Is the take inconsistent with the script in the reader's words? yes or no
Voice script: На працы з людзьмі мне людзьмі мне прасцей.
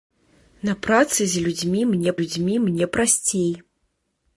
no